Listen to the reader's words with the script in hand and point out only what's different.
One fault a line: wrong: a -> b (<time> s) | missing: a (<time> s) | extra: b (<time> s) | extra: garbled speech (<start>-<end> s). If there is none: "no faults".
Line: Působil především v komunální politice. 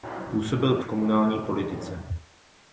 missing: především (0.8 s)